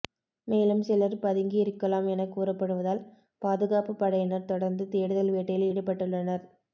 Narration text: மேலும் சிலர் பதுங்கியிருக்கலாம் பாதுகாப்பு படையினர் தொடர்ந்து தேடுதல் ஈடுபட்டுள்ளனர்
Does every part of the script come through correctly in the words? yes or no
no